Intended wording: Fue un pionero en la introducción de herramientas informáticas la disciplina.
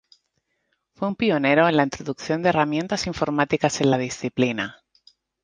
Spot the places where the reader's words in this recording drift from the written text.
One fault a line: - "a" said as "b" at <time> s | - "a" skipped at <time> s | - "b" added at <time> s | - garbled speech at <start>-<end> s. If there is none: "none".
- "en" added at 3.8 s